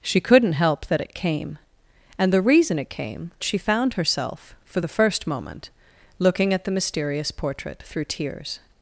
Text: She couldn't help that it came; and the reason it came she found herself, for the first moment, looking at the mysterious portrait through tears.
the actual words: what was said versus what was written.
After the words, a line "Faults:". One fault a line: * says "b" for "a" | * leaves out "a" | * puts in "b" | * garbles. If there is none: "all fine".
She couldn't help that it came; and the reason it came she found herself, for the first moment, looking at the mysterious portrait through tears.
Faults:
all fine